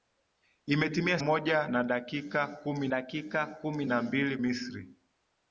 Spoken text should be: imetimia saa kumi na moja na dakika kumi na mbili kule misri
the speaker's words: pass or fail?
fail